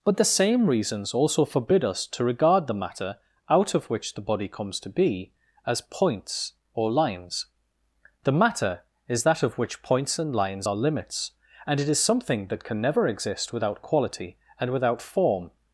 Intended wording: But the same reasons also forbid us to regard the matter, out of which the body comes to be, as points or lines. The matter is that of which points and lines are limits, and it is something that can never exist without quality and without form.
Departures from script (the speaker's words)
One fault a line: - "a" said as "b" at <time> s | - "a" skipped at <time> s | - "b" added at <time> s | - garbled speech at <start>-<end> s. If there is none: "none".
none